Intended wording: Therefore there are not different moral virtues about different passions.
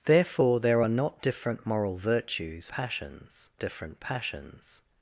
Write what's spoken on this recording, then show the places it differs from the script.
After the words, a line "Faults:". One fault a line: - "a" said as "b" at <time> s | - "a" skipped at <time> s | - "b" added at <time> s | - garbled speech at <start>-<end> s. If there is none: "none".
Therefore there are not different moral virtues passions different passions.
Faults:
- "about" said as "passions" at 2.7 s